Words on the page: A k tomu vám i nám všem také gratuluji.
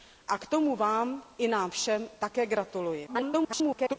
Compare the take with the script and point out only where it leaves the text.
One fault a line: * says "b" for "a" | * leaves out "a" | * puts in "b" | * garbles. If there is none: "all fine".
* garbles